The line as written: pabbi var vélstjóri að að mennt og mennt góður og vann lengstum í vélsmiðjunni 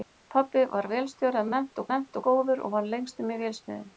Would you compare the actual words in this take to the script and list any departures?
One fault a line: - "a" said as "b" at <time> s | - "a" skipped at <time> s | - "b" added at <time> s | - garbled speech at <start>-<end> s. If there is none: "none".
none